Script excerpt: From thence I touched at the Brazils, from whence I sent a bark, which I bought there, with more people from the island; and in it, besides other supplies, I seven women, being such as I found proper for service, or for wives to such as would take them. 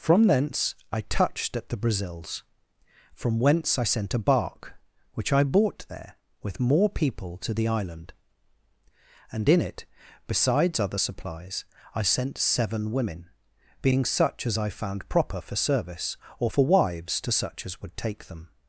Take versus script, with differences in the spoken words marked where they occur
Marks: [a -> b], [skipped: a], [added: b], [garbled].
From thence I touched at the Brazils, from whence I sent a bark, which I bought there, with more people [from -> to] the island; and in it, besides other supplies, I [added: sent] seven women, being such as I found proper for service, or for wives to such as would take them.